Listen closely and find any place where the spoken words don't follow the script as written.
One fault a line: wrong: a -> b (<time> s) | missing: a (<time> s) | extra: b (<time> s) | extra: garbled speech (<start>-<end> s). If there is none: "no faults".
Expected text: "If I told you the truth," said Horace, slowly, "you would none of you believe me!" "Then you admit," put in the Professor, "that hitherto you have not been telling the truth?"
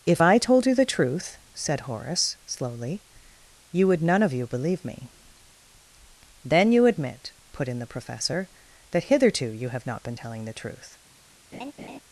no faults